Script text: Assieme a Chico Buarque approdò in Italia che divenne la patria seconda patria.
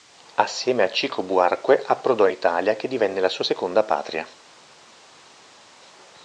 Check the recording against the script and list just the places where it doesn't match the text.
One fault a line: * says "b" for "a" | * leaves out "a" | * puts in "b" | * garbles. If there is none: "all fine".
* says "sua" for "patria"